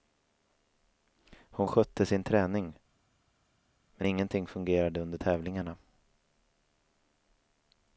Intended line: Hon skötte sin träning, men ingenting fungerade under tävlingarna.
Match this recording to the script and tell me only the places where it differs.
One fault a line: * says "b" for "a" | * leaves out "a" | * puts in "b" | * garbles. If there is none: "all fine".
all fine